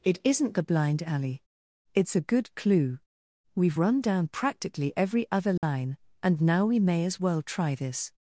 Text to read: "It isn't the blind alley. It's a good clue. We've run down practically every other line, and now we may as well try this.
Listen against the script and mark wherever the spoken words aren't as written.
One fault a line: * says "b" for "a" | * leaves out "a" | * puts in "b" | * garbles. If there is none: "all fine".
all fine